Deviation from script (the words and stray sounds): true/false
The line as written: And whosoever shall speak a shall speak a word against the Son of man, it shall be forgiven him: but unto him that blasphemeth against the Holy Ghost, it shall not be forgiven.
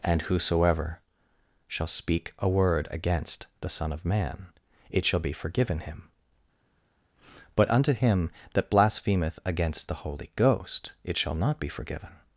true